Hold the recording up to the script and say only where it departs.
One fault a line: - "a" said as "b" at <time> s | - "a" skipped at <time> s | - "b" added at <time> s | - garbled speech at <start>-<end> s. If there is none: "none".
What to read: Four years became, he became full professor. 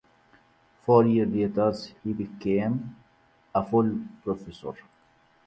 - "became" said as "later" at 1.3 s
- "a" added at 3.5 s